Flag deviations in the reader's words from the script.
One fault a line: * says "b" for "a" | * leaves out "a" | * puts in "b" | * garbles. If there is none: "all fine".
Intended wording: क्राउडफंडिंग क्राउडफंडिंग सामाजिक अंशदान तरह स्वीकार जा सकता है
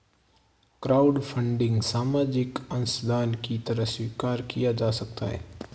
* leaves out "क्राउडफंडिंग"
* puts in "की"
* puts in "किया"